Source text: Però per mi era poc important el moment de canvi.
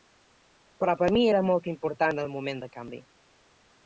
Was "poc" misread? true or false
true